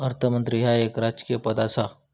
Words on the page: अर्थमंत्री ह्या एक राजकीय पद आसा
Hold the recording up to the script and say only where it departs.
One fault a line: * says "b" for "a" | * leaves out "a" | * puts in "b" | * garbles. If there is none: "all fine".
all fine